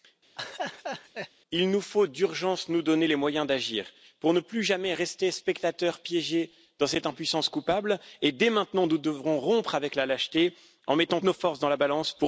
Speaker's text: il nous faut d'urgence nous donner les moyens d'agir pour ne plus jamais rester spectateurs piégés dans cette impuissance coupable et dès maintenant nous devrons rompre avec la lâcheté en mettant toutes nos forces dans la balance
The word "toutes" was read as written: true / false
false